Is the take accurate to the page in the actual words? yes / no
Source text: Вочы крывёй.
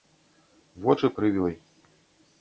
yes